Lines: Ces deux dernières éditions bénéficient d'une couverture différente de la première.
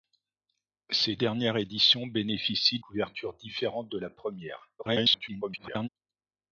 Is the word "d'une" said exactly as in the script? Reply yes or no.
no